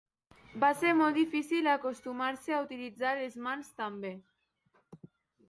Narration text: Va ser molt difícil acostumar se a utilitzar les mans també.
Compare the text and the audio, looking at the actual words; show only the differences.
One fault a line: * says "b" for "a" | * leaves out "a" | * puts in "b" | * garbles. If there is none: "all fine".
all fine